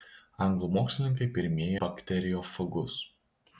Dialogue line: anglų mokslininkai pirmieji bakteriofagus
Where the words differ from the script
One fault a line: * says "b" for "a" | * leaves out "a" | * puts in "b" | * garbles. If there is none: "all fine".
all fine